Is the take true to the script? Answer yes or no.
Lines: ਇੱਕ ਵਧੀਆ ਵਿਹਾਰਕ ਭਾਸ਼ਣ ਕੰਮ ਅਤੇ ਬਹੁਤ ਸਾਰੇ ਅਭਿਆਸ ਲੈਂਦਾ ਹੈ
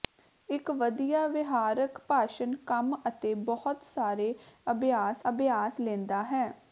no